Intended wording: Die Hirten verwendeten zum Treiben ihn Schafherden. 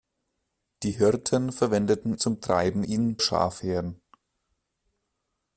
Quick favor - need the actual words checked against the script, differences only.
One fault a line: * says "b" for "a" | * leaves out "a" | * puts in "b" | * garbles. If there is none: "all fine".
all fine